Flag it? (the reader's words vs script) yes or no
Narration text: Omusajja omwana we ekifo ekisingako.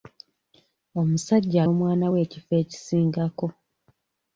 no